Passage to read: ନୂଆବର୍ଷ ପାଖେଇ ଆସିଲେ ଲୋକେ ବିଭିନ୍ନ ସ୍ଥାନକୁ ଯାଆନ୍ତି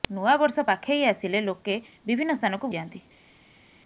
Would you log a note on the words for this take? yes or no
no